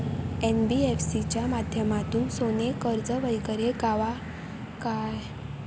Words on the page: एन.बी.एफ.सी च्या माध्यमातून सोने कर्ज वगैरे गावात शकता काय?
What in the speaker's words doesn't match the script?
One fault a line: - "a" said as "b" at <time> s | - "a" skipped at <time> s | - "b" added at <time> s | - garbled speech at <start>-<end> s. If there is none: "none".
- "शकता" skipped at 4.8 s